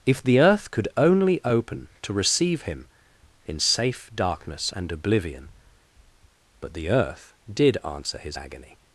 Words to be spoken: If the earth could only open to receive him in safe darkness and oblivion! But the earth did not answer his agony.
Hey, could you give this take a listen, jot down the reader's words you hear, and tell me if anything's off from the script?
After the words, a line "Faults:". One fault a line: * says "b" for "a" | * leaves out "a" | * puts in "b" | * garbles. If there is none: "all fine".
If the earth could only open to receive him in safe darkness and oblivion! But the earth did answer his agony.
Faults:
* leaves out "not"